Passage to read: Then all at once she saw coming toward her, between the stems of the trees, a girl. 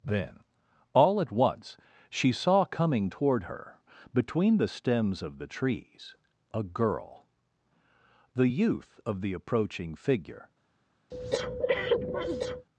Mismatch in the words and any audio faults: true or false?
true